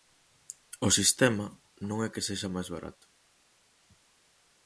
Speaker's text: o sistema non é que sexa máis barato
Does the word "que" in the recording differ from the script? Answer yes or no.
no